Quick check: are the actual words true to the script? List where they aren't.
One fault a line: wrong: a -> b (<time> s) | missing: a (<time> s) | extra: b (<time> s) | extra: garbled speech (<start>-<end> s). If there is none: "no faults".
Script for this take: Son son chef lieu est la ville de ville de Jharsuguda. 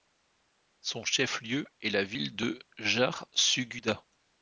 missing: son (1.1 s)
missing: ville de (2.6 s)